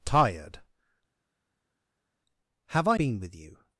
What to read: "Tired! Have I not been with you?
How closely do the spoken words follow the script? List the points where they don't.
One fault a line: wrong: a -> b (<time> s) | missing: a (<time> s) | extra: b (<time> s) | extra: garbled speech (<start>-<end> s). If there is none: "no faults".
missing: not (3.0 s)